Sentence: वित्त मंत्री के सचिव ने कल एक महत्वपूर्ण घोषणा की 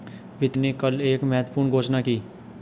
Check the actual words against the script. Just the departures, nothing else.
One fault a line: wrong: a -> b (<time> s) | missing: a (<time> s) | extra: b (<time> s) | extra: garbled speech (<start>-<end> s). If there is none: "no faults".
missing: मंत्री के सचिव (0.6 s)